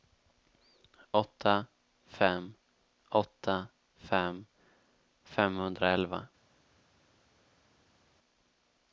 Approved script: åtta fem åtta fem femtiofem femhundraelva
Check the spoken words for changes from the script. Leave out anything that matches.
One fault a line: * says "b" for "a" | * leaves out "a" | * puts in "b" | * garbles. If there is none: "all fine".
* leaves out "femtiofem"